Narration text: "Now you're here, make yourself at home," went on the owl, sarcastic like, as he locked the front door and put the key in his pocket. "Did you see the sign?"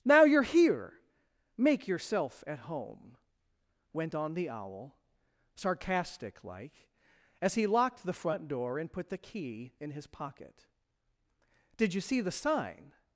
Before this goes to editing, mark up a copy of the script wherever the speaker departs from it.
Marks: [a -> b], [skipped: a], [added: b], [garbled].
"Now you're here, make yourself at home," went on the owl, sarcastic like, as he locked the front door and put the key in his pocket. "Did you see the sign?"